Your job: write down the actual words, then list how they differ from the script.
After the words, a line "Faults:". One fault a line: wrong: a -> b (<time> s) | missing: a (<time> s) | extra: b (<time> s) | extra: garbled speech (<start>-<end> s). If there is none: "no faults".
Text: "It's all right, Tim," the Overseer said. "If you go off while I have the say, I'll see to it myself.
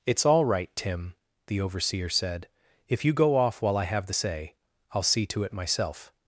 "It's all right, Tim," the Overseer said. "If you go off while I have the say, I'll see to it myself.
Faults:
no faults